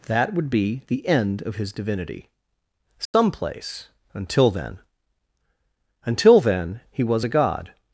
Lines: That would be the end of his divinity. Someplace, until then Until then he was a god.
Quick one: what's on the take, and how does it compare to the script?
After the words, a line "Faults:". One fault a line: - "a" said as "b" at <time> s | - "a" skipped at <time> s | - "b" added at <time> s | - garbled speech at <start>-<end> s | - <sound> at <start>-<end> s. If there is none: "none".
That would be the end of his divinity. Someplace, until then Until then he was a god.
Faults:
- dropout at 3.1-3.1 s